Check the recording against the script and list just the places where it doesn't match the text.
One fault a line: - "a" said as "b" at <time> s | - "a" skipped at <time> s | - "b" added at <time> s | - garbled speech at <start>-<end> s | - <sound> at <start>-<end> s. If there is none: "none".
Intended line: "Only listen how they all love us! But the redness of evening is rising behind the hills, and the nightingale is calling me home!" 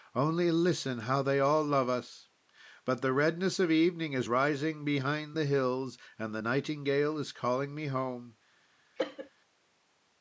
- cough at 9.0-9.3 s